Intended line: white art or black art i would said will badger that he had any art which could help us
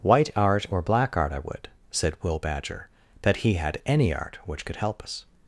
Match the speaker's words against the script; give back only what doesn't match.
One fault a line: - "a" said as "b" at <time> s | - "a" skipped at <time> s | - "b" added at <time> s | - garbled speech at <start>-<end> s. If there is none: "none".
none